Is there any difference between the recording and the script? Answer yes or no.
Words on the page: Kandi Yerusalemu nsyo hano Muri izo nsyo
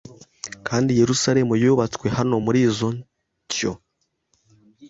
yes